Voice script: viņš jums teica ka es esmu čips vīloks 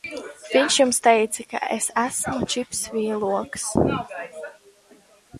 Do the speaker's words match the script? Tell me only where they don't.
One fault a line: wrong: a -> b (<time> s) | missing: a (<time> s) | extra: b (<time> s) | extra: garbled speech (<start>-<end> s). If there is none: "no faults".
no faults